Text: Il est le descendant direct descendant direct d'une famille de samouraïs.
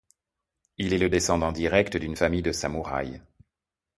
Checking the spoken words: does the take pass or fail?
fail